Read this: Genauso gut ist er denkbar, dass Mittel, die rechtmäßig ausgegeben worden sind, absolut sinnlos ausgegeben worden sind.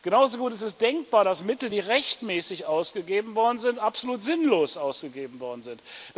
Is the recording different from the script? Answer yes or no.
yes